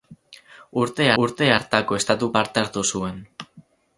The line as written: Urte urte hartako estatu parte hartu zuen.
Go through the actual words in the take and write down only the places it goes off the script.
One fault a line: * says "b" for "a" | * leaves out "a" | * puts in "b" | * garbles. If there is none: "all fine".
all fine